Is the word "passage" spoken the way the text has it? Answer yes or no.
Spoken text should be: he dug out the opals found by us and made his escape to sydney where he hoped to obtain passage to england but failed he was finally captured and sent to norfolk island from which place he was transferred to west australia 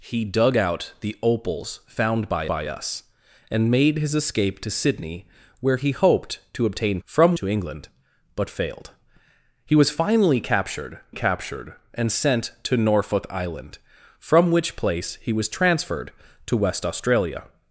no